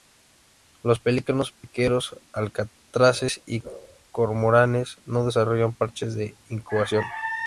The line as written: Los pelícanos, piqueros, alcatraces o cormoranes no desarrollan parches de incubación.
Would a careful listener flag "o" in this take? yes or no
yes